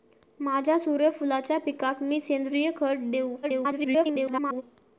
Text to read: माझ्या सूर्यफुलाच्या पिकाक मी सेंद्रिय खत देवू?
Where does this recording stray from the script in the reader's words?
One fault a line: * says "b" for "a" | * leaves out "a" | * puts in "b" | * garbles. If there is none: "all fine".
* garbles